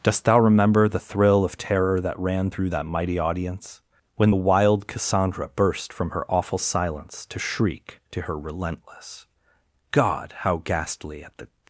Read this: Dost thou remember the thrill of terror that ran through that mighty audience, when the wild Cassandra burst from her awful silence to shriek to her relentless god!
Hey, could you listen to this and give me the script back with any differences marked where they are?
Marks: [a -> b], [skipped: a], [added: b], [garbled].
Dost thou remember the thrill of terror that ran through that mighty audience, when the wild Cassandra burst from her awful silence to shriek to her relentless god! [added: How ghastly at the]